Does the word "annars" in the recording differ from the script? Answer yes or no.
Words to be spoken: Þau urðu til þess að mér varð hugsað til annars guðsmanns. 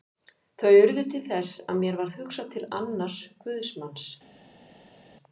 no